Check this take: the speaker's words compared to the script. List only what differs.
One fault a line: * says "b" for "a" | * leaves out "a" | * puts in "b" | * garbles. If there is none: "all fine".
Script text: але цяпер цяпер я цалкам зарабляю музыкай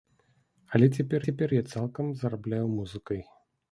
all fine